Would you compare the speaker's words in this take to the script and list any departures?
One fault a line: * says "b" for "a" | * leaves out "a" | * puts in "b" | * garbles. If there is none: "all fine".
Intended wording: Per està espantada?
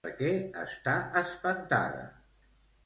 * puts in "què"